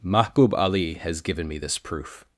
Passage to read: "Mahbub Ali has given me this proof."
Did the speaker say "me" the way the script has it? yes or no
yes